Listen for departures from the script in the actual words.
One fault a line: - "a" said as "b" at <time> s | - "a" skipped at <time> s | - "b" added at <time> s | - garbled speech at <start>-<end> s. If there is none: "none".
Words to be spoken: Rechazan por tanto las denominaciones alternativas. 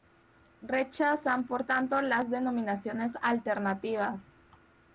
none